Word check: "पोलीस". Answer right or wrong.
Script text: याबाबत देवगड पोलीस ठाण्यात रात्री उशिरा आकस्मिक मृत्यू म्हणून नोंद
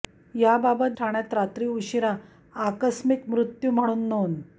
wrong